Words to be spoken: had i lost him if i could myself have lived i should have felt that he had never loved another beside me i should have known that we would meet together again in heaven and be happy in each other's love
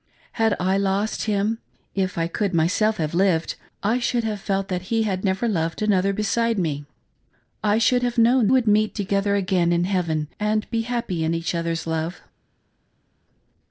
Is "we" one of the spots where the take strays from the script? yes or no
yes